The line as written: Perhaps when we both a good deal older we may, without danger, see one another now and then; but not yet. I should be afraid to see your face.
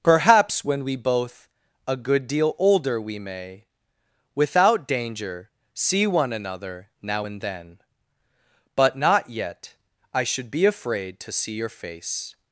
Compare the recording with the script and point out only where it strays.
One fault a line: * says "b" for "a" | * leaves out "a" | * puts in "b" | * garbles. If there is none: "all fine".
all fine